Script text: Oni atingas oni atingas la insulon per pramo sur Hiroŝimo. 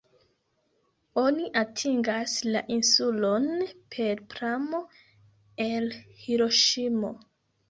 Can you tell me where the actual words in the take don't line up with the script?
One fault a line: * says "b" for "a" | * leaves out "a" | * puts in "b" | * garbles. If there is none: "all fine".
* leaves out "oni atingas"
* says "el" for "sur"